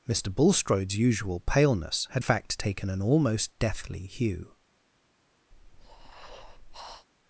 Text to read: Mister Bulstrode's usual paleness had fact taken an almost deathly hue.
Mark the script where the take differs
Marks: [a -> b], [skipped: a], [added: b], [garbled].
Mister Bulstrode's usual paleness had fact taken an almost deathly hue.